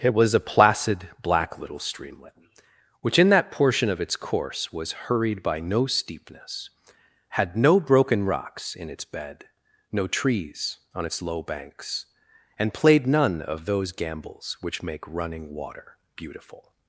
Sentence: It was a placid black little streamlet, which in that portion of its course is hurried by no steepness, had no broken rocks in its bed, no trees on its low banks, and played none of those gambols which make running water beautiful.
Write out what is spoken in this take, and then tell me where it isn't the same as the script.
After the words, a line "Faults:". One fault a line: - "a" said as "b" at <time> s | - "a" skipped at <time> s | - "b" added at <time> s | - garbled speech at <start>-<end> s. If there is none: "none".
It was a placid black little streamlet, which in that portion of its course was hurried by no steepness, had no broken rocks in its bed, no trees on its low banks, and played none of those gambols which make running water beautiful.
Faults:
- "is" said as "was" at 4.7 s